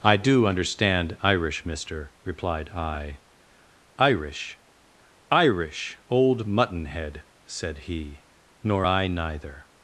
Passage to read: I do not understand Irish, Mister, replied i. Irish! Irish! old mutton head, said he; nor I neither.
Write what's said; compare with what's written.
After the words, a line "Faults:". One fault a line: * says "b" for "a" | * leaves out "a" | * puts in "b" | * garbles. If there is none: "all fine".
I do understand Irish, Mister, replied i. Irish! Irish! old mutton head, said he; nor I neither.
Faults:
* leaves out "not"